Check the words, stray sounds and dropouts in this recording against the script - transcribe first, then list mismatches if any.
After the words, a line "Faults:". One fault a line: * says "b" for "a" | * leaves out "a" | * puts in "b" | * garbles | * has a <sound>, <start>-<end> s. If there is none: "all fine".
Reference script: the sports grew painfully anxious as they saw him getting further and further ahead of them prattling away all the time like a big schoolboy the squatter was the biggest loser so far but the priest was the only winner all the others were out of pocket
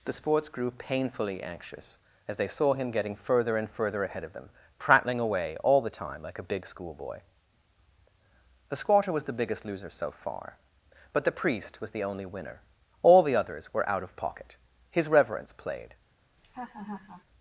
the sports grew painfully anxious as they saw him getting further and further ahead of them prattling away all the time like a big schoolboy the squatter was the biggest loser so far but the priest was the only winner all the others were out of pocket his reverence played
Faults:
* puts in "his reverence played"
* has a laugh, 16.4-17.2 s